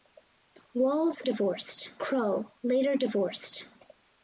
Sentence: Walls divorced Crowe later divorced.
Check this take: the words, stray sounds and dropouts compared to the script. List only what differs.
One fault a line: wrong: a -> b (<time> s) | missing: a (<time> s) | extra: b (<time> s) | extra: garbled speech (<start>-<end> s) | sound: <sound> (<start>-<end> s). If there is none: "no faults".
no faults